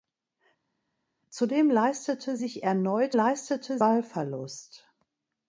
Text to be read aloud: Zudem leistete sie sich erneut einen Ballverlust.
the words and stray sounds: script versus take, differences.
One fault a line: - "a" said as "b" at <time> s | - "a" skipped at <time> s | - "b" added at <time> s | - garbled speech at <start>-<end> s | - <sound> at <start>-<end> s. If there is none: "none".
- "sie" skipped at 2.4 s
- "einen" said as "leistete" at 3.1 s